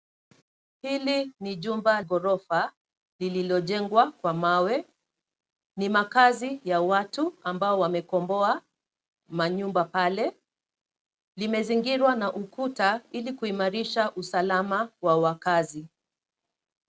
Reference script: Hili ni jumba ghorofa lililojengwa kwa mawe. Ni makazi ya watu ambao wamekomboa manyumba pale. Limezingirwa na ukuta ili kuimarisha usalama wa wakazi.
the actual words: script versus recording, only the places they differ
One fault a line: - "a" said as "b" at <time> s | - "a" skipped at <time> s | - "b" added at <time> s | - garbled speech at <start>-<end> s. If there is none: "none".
none